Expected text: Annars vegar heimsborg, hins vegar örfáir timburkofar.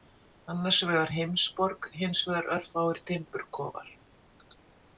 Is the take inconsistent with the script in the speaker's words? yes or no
no